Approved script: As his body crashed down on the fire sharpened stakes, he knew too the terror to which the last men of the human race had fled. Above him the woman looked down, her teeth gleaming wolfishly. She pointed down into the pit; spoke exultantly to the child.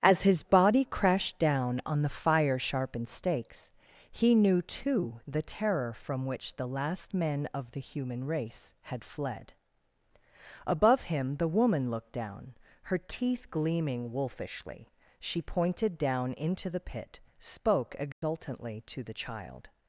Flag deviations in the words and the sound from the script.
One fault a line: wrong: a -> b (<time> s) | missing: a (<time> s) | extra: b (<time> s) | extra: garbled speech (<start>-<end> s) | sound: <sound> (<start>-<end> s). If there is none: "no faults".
wrong: to -> from (5.9 s)
sound: dropout (18.1-18.2 s)